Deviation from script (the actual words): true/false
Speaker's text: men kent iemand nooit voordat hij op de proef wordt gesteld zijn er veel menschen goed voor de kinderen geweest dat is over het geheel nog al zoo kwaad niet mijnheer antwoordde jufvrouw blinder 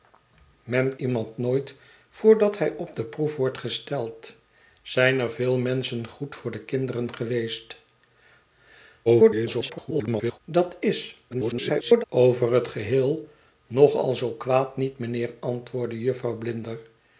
true